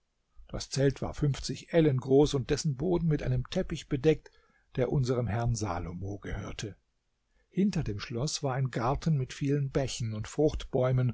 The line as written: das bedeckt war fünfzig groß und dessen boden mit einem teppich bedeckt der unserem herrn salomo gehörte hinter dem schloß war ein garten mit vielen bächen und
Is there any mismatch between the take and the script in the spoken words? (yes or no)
yes